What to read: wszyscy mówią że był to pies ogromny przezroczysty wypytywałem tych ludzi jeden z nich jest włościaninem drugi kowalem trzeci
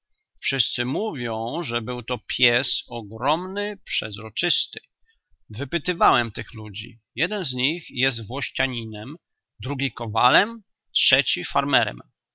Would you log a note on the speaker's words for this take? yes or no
no